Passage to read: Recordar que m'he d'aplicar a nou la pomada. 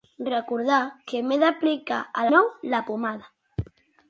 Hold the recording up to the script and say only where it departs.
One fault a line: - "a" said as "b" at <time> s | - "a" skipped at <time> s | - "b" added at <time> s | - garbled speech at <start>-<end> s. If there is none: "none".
none